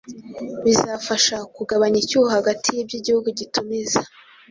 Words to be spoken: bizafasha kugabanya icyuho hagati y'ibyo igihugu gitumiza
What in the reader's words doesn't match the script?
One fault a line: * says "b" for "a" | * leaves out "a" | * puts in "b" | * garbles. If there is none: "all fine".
all fine